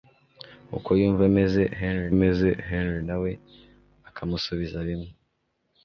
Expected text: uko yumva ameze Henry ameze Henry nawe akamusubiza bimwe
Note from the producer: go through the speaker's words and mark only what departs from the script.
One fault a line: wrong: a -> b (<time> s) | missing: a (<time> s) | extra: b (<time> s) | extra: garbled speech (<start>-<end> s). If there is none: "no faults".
no faults